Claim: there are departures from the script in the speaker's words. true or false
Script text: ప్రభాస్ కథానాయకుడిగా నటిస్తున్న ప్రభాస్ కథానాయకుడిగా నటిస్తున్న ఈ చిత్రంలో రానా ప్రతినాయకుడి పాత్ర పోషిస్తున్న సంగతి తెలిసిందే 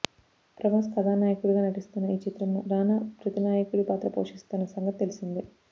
true